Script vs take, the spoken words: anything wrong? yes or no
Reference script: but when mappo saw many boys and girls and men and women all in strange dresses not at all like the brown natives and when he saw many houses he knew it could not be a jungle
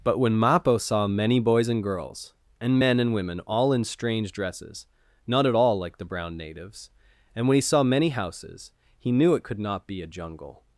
no